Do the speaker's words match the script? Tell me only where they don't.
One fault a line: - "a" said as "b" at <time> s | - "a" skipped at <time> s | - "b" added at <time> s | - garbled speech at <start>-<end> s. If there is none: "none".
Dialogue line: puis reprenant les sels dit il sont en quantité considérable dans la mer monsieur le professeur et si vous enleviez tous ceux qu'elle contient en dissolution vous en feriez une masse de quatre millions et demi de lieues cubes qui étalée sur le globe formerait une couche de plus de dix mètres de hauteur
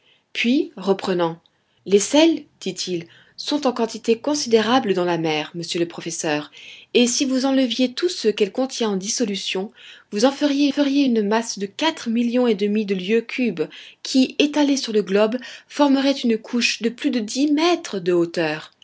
- "feriez" added at 10.7 s